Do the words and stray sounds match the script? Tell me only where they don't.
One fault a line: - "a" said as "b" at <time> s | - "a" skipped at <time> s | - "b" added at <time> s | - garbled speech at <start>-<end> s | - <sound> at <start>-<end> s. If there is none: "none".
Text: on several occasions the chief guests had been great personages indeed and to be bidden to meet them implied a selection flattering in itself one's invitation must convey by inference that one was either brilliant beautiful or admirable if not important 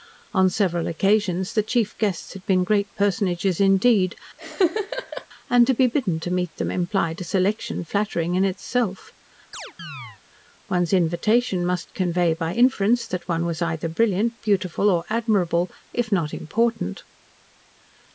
- laugh at 4.4-5.3 s
- chirp at 9.5-10.2 s